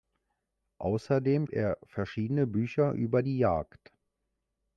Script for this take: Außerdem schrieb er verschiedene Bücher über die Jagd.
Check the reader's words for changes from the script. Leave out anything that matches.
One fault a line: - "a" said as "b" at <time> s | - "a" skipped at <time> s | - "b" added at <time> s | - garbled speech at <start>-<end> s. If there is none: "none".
- "schrieb" skipped at 1.4 s